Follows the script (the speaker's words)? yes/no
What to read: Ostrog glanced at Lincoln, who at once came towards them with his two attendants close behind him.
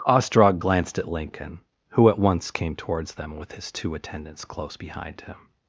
yes